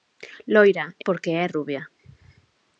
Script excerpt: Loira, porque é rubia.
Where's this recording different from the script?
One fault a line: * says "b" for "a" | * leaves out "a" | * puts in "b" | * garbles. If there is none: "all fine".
all fine